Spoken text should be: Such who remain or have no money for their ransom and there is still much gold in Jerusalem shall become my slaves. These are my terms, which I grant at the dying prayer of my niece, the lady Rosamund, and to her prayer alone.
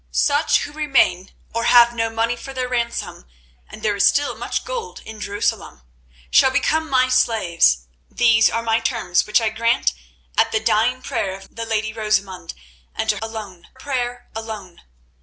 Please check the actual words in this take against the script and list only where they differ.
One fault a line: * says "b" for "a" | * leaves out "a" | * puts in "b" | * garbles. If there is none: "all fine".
* leaves out "my niece"
* says "alone" for "her"